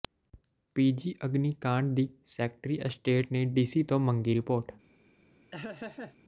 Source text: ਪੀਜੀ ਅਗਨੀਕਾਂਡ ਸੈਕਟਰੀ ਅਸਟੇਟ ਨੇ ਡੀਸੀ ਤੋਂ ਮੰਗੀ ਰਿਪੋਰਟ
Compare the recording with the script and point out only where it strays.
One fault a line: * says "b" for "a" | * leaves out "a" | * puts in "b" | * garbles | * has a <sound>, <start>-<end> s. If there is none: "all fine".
* puts in "ਦੀ"
* has a laugh, 5.5-6.2 s